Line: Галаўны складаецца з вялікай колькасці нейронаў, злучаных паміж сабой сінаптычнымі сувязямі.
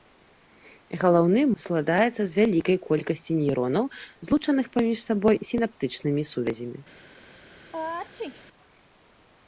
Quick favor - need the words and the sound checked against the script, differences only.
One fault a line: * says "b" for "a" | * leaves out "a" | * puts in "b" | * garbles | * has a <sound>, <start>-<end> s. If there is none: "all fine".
* has a sneeze, 7.7-8.4 s